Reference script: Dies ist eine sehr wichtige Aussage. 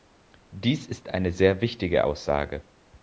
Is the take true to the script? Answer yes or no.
yes